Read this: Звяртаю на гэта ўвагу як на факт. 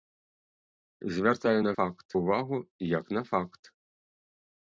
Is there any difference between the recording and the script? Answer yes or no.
yes